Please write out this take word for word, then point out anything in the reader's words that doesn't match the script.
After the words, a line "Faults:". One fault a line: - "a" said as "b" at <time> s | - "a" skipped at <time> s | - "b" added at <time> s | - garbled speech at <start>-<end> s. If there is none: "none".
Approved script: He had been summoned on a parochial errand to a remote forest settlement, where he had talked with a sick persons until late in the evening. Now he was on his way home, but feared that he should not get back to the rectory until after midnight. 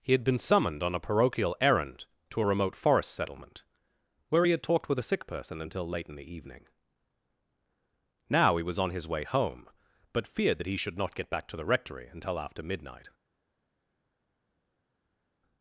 He had been summoned on a parochial errand to a remote forest settlement, where he had talked with a sick person until late in the evening. Now he was on his way home, but feared that he should not get back to the rectory until after midnight.
Faults:
- "persons" said as "person" at 5.3 s